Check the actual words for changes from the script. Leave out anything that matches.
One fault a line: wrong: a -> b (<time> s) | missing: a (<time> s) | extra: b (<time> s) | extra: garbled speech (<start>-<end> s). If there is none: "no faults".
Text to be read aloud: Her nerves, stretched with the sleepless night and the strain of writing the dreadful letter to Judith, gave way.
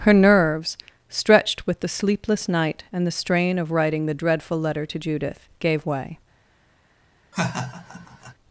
no faults